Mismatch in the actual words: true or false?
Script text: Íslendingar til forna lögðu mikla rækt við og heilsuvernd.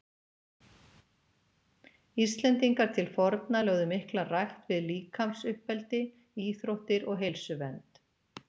true